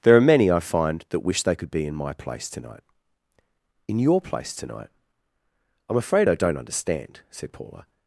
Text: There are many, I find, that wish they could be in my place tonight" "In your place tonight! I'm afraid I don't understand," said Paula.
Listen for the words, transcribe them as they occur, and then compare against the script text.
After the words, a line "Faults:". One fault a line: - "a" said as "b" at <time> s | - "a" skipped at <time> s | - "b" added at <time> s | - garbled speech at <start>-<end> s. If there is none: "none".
There are many, I find, that wish they could be in my place tonight" "In your place tonight! I'm afraid I don't understand," said Paula.
Faults:
none